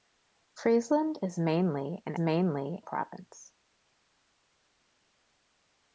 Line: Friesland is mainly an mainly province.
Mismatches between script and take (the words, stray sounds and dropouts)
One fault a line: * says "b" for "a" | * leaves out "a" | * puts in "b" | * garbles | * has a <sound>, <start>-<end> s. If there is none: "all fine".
all fine